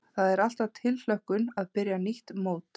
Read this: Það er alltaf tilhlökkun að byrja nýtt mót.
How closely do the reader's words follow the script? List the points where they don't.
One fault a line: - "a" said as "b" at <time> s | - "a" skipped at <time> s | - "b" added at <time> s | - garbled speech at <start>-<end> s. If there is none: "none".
none